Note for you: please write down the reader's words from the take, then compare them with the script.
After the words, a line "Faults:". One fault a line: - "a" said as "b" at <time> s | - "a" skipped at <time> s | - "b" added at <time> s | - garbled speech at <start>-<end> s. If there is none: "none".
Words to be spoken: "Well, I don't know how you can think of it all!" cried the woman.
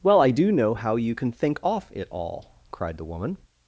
"Well, I do know how you can think off it all!" cried the woman.
Faults:
- "don't" said as "do" at 0.3 s
- "of" said as "off" at 1.6 s